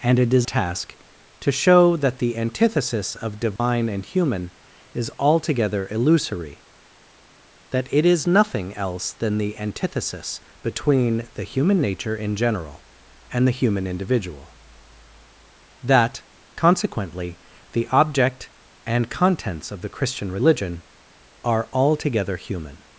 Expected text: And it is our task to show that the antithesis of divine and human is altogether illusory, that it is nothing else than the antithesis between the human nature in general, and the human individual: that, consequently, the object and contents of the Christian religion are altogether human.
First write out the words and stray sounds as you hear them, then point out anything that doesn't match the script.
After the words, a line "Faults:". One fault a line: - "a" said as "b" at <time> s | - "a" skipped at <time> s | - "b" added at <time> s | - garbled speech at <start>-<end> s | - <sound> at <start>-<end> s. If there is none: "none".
And it is task to show that the antithesis of divine and human is altogether illusory, that it is nothing else than the antithesis between the human nature in general, and the human individual: that, consequently, the object and contents of the Christian religion are altogether human.
Faults:
- "our" skipped at 0.5 s
- dropout at 3.6-3.6 s